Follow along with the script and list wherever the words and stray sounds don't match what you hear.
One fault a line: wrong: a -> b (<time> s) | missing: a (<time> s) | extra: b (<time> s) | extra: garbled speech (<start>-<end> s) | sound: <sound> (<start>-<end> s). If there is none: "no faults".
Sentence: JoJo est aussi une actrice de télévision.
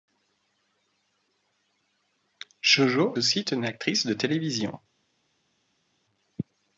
missing: est (3.1 s)